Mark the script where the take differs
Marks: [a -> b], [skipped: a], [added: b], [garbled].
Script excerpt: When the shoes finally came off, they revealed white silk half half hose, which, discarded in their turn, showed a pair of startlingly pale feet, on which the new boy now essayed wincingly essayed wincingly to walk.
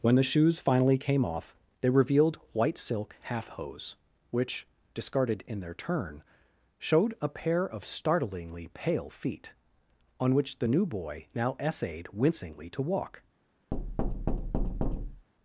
When the shoes finally came off, they revealed white silk half [skipped: half] hose, which, discarded in their turn, showed a pair of startlingly pale feet, on which the new boy now essayed wincingly [skipped: essayed wincingly] to walk.